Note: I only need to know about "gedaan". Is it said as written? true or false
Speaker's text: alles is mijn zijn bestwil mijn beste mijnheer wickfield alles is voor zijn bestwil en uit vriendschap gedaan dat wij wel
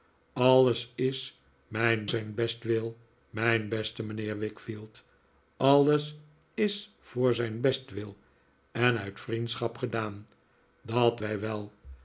true